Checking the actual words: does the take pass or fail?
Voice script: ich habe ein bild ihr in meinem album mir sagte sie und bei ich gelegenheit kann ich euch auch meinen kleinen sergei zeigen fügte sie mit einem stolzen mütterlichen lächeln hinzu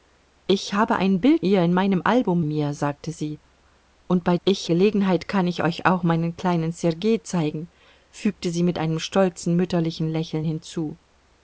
pass